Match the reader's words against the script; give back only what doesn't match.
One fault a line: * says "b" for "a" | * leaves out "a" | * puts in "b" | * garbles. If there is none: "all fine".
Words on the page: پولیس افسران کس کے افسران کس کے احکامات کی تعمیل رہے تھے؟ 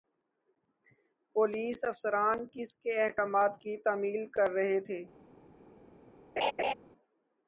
* leaves out "افسران کس کے"
* puts in "کر"